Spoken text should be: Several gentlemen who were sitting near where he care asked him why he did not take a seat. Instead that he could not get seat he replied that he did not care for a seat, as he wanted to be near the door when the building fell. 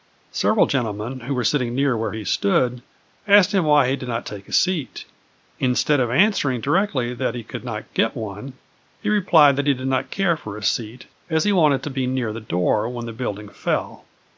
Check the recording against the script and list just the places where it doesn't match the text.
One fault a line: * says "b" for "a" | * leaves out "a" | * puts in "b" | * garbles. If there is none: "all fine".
* says "stood" for "care"
* puts in "of answering directly"
* says "one" for "seat"